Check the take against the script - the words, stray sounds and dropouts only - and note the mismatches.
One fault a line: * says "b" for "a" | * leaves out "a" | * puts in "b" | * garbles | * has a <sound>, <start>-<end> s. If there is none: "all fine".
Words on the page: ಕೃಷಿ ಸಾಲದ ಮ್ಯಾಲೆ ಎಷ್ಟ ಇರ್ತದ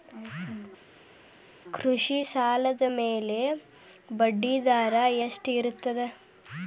* puts in "ಬಡ್ಡಿದರಾ"